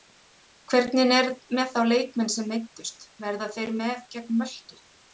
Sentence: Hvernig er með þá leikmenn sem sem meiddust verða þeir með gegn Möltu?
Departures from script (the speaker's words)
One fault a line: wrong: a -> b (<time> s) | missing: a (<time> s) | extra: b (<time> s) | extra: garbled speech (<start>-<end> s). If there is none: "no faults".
missing: sem (2.5 s)